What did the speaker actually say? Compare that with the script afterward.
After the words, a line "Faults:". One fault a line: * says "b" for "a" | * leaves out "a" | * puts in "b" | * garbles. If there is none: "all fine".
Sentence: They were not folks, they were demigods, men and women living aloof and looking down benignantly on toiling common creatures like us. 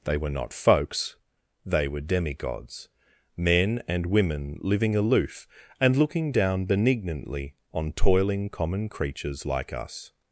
They were not folks, they were demigods, men and women living aloof and looking down benignantly on toiling common creatures like us.
Faults:
all fine